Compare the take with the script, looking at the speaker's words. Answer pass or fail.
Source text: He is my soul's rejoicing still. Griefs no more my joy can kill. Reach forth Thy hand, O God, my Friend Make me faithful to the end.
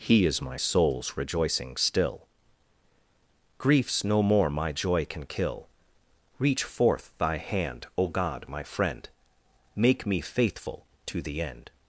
pass